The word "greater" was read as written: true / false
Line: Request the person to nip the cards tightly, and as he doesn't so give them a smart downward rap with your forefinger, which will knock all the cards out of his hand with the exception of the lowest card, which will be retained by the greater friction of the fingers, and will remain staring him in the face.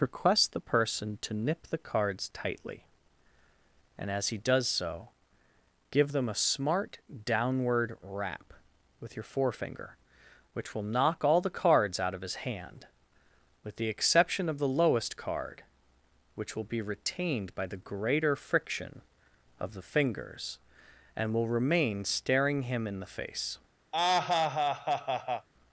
true